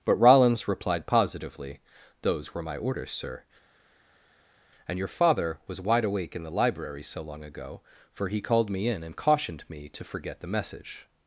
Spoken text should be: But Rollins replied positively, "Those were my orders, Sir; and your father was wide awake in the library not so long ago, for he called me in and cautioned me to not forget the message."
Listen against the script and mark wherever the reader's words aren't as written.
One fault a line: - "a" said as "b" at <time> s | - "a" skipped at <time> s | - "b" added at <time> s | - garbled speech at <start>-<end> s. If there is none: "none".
- "not" skipped at 7.0 s
- "not" skipped at 10.0 s